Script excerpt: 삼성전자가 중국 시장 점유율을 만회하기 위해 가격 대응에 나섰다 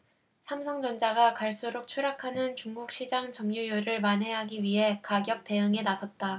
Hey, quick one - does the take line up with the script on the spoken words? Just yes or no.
no